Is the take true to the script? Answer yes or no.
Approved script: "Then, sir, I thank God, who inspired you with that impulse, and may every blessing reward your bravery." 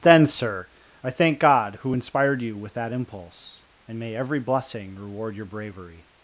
yes